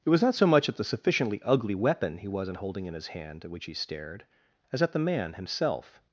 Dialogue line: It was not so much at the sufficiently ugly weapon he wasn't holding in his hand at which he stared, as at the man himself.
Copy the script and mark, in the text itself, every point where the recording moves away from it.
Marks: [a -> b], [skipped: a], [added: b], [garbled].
It was not so much at the sufficiently ugly weapon he wasn't holding in his hand at which he stared, as at the man himself.